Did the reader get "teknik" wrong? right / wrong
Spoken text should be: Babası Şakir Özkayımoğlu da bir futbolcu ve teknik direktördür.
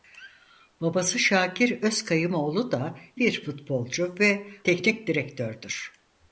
right